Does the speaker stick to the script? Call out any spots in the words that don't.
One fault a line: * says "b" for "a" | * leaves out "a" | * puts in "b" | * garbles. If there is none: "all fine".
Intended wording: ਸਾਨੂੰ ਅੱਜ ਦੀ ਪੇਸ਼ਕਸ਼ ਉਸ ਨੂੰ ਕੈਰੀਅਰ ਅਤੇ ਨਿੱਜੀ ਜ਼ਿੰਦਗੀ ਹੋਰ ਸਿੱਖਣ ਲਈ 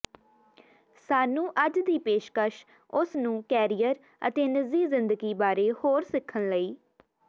* puts in "ਬਾਰੇ"